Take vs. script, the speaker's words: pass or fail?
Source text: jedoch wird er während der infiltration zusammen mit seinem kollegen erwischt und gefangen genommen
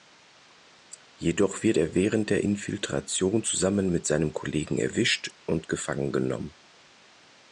pass